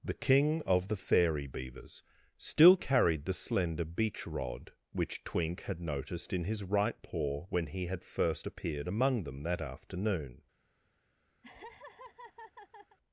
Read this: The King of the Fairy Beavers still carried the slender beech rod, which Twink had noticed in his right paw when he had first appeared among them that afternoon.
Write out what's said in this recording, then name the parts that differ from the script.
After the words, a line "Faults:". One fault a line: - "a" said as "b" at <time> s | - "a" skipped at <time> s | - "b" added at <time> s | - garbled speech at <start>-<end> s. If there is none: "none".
The King of the Fairy Beavers still carried the slender beech rod, which Twink had noticed in his right paw when he had first appeared among them that afternoon.
Faults:
none